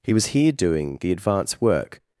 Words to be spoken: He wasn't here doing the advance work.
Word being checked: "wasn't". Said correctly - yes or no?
no